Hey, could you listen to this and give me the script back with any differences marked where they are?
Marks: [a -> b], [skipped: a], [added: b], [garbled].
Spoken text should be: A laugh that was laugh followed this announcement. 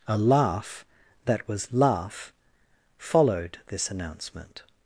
A laugh that was laugh followed this announcement.